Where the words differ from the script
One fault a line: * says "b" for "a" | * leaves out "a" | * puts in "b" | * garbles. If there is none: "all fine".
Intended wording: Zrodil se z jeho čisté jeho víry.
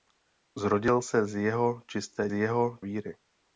all fine